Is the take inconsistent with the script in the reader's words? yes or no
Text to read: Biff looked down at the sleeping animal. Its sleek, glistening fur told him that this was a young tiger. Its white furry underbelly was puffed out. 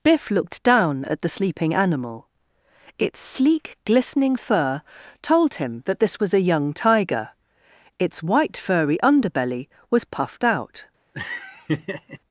no